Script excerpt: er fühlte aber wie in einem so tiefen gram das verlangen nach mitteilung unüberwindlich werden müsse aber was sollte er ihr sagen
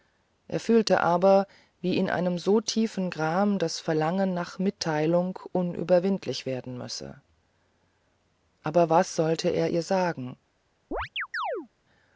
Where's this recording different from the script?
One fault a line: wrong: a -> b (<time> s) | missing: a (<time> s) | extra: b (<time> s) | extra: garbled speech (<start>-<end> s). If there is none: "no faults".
no faults